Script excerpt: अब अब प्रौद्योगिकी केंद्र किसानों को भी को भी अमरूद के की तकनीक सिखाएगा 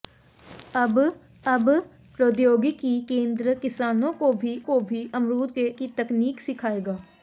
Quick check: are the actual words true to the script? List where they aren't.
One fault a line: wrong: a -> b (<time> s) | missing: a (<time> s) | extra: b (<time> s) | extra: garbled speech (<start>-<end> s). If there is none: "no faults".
no faults